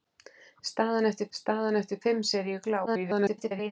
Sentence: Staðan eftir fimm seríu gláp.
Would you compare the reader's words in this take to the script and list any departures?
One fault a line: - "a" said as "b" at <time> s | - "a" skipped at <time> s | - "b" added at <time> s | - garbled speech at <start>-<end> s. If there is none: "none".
- "staðan eftir" added at 1.4 s
- garbled speech at 2.9-3.7 s